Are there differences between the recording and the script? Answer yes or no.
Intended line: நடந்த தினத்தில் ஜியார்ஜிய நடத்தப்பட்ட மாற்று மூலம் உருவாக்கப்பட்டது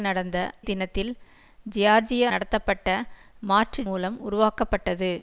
no